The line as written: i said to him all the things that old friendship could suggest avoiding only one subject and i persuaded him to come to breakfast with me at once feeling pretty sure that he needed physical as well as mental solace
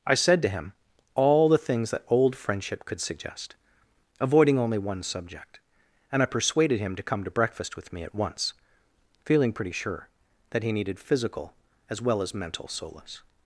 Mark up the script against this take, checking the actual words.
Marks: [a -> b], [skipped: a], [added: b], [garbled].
i said to him all the things that old friendship could suggest avoiding only one subject and i persuaded him to come to breakfast with me at once feeling pretty sure that he needed physical as well as mental solace